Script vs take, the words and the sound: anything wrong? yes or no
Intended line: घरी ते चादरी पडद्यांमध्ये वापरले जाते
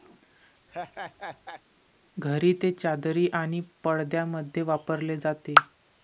yes